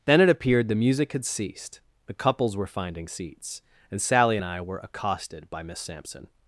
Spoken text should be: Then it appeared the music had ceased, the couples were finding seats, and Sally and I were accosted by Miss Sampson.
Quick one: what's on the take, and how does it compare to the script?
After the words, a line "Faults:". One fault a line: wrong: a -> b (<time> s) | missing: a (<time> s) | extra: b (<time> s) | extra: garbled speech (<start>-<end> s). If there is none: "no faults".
Then it appeared the music had ceased, the couples were finding seats, and Sally and I were accosted by Miss Sampson.
Faults:
no faults